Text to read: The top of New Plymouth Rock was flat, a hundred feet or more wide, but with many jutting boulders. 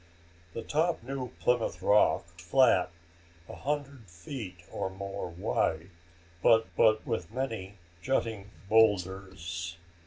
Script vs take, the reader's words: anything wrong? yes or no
yes